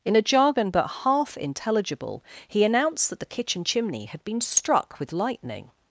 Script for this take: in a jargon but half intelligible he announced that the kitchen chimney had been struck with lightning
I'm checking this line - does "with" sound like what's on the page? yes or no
yes